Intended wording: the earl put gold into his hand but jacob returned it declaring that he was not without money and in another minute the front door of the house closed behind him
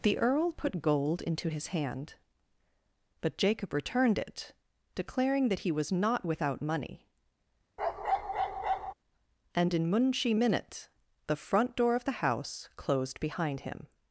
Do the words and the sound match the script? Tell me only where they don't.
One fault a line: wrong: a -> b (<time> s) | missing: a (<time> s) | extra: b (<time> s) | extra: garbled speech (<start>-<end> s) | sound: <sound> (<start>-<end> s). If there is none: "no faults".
sound: bark (7.8-8.9 s)
wrong: another -> munshi (9.9 s)